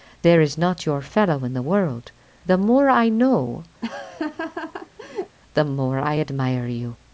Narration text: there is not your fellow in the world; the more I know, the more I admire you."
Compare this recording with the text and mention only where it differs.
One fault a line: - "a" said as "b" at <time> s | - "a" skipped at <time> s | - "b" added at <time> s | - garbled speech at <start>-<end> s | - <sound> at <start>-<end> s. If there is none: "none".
- laugh at 3.8-5.4 s